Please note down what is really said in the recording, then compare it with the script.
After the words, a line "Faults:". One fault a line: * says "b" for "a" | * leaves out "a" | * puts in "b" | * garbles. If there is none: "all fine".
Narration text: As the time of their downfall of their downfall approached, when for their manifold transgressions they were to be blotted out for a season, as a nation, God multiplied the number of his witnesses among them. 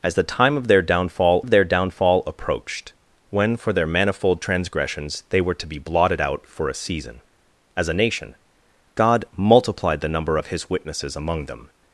As the time of their downfall of their downfall approached, when for their manifold transgressions they were to be blotted out for a season, as a nation, God multiplied the number of his witnesses among them.
Faults:
all fine